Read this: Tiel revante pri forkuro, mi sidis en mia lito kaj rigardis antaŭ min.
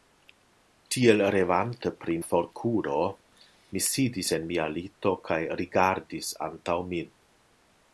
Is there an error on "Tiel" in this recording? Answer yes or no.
no